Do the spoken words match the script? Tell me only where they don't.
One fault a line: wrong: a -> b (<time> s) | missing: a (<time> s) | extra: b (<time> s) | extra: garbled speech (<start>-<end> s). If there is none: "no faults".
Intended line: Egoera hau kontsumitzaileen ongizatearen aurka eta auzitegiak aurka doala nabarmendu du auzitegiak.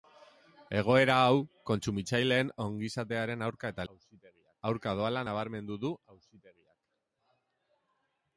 no faults